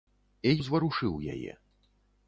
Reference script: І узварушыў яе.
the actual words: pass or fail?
pass